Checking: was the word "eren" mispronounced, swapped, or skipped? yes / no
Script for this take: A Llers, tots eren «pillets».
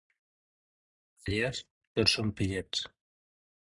yes